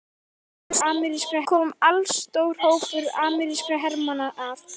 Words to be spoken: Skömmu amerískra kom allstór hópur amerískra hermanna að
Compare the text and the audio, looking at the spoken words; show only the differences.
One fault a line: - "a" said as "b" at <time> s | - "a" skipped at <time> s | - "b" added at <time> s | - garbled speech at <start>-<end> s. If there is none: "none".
none